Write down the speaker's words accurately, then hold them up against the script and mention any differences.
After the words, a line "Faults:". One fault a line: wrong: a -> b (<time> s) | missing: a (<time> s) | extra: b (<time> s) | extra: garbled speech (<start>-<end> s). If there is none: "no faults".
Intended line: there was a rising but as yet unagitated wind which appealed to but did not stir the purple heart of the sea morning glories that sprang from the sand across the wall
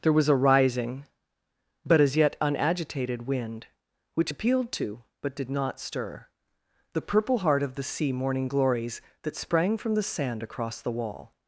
there was a rising but as yet unagitated wind which appealed to but did not stir the purple heart of the sea morning glories that sprang from the sand across the wall
Faults:
no faults